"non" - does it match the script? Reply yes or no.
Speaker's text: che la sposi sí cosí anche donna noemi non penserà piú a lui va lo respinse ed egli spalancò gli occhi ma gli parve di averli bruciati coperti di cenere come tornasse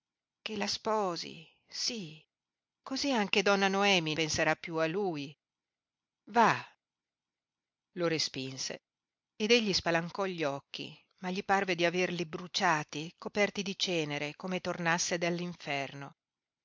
no